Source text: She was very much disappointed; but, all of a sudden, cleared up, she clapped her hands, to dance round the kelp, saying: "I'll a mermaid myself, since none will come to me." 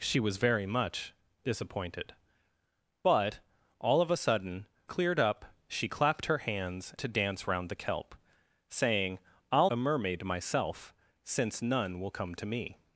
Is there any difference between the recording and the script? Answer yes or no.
no